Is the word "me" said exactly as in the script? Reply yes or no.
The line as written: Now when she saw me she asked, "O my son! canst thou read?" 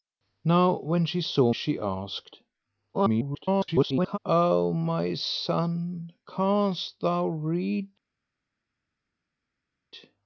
no